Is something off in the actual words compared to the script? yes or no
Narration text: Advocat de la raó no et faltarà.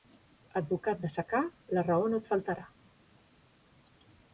yes